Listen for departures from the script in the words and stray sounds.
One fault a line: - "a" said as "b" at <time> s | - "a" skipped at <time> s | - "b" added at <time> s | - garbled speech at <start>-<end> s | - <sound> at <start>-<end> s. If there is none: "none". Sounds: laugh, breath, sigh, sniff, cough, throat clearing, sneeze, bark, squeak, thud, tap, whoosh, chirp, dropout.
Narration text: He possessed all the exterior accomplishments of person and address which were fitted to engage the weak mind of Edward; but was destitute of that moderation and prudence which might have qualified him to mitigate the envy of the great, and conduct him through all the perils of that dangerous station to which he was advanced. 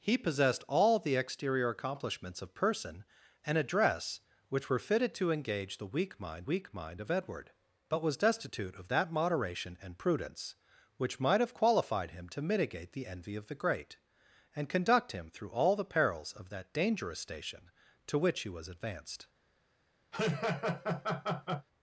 - "weak mind" added at 6.5 s
- laugh at 20.1-21.7 s